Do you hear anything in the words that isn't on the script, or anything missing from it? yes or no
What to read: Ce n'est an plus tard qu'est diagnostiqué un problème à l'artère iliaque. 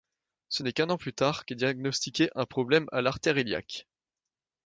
yes